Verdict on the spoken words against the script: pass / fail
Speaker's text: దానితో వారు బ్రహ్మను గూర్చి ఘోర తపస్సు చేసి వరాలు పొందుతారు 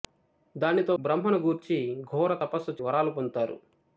fail